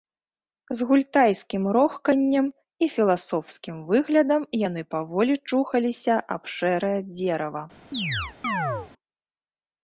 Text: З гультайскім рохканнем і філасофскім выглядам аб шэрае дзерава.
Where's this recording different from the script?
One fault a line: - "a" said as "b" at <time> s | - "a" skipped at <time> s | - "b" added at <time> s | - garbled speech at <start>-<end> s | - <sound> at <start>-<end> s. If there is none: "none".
- "яны паволі чухаліся" added at 4.7 s
- chirp at 7.9-8.9 s